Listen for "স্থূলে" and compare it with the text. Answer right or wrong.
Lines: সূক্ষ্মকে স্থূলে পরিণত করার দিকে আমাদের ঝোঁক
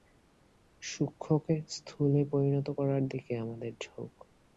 right